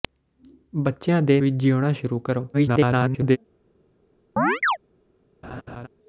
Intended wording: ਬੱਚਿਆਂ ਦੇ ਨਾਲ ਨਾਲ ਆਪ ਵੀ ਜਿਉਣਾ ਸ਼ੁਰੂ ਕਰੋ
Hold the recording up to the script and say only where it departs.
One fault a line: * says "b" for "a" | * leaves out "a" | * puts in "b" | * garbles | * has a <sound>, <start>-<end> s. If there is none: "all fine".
* leaves out "ਨਾਲ ਨਾਲ ਆਪ"
* garbles
* has a chirp, 4.4-4.8 s
* has a laugh, 5.4-5.9 s